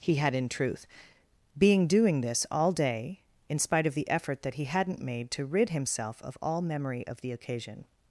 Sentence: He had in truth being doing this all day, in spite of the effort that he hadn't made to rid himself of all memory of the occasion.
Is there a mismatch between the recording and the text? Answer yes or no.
no